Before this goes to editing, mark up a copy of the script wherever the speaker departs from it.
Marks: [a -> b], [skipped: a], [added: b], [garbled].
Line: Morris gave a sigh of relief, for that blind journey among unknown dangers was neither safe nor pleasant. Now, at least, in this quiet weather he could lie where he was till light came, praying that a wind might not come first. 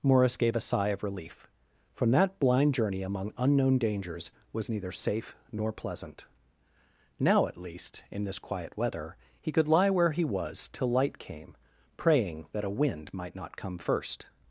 Morris gave a sigh of relief, [for -> from] that blind journey among unknown dangers was neither safe nor pleasant. Now, at least, in this quiet weather he could lie where he was till light came, praying that a wind might not come first.